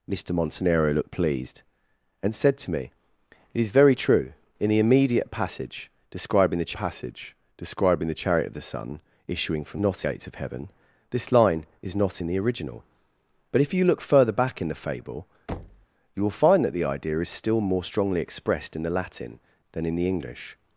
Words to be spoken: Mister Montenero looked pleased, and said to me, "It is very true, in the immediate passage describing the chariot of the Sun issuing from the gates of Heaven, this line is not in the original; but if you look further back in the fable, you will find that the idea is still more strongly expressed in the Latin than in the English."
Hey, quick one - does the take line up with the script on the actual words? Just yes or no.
no